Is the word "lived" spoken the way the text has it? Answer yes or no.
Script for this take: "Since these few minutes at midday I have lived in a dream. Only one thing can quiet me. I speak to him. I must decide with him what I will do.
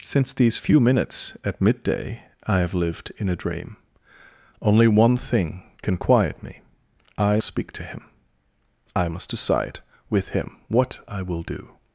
yes